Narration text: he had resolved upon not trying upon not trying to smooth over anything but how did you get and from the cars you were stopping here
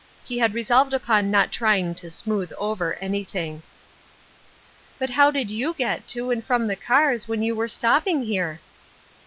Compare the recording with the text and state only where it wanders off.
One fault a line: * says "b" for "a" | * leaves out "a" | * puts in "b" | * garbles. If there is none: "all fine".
* leaves out "upon not trying"
* puts in "to"
* puts in "when"